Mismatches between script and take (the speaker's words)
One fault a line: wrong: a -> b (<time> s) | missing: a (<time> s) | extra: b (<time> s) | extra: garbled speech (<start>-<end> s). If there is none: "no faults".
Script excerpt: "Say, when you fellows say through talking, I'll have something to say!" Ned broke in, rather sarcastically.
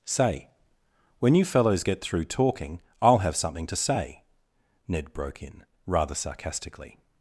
wrong: say -> get (1.8 s)